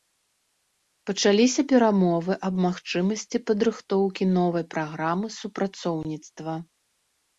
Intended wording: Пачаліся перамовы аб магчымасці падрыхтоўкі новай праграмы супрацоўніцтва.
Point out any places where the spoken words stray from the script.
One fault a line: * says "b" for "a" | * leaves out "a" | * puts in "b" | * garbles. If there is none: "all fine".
all fine